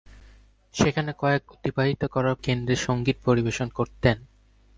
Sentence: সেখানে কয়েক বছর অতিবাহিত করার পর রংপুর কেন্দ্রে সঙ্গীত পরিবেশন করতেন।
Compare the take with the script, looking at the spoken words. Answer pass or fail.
fail